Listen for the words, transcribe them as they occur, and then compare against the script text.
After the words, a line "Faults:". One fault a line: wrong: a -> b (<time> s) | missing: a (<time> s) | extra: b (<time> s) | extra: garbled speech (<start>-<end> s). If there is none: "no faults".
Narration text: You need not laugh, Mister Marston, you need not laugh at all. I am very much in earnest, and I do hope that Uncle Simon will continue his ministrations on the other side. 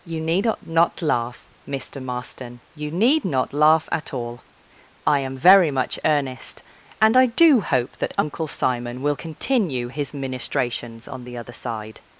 You need not laugh, Mister Marston, you need not laugh at all. I am very much earnest, and I do hope that Uncle Simon will continue his ministrations on the other side.
Faults:
missing: in (6.0 s)